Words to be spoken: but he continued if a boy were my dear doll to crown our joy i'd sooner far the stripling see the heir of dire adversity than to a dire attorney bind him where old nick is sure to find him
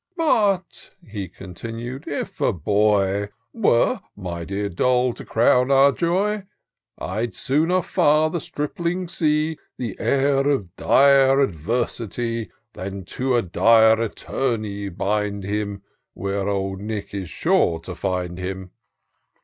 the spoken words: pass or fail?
pass